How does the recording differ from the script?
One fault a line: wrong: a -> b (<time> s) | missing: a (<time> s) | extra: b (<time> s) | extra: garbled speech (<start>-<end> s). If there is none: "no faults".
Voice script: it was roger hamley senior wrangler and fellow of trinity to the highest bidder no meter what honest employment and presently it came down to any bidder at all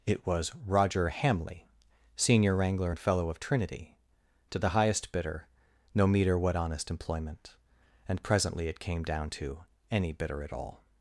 no faults